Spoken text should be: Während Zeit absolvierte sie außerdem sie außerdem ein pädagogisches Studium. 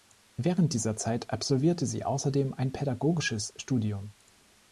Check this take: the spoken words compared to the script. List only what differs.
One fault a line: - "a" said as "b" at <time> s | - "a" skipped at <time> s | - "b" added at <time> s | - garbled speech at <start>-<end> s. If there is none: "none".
- "dieser" added at 0.7 s
- "sie außerdem" skipped at 2.5 s